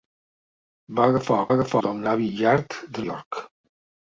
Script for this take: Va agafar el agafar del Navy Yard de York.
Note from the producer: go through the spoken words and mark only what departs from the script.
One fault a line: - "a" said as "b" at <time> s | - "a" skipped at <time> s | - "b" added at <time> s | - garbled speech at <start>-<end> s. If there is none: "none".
none